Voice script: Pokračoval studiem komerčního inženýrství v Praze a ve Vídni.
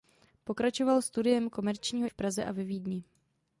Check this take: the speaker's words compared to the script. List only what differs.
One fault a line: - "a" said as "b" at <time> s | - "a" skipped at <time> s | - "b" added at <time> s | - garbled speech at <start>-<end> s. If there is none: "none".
- "inženýrství" skipped at 2.1 s